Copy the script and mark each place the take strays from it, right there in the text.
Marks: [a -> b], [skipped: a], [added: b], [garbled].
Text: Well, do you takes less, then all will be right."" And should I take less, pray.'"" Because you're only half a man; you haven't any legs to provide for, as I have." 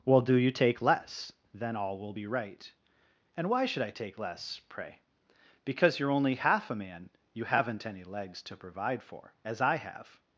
Well, do you [takes -> take] less, then all will be right."" And [added: why] should I take less, pray.'"" Because you're only half a man; you haven't any legs to provide for, as I have."